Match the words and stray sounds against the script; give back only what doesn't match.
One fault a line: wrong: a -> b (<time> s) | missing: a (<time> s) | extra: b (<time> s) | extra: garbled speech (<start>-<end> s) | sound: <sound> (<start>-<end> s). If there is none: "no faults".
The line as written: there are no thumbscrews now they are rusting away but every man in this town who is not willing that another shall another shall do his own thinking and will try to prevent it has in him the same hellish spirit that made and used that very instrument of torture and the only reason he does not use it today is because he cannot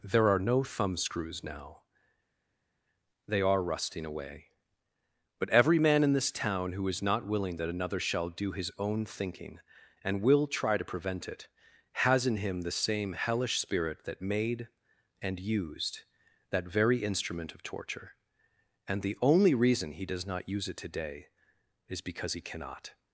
missing: another shall (8.3 s)